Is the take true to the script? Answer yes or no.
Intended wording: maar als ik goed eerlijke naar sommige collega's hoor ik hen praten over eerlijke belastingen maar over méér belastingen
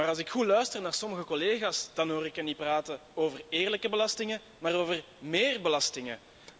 no